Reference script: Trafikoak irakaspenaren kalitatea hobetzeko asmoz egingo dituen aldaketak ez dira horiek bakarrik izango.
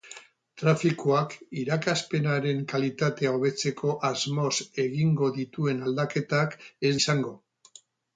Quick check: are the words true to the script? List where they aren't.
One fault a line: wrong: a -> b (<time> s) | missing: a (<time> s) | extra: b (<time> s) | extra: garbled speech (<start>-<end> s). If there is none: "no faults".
missing: dira horiek bakarrik (7.0 s)